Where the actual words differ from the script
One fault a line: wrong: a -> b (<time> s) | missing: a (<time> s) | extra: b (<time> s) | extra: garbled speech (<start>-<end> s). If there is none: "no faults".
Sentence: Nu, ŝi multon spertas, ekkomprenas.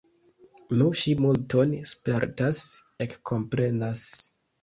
no faults